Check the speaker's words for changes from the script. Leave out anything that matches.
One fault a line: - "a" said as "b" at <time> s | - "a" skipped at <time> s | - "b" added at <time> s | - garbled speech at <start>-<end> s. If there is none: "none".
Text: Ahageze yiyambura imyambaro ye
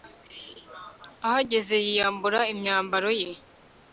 none